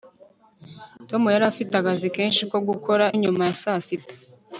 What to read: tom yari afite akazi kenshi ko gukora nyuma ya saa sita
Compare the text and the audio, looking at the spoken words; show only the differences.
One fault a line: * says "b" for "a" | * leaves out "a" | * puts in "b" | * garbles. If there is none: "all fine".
all fine